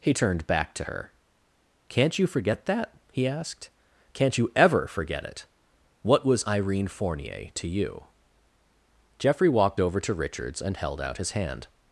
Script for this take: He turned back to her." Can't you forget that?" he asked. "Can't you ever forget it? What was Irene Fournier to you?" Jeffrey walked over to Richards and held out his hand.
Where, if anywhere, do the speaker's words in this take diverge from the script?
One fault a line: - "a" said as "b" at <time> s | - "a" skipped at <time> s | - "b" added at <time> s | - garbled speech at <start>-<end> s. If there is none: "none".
none